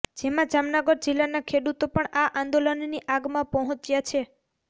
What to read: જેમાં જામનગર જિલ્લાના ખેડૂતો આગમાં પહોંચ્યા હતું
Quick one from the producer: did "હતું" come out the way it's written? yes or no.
no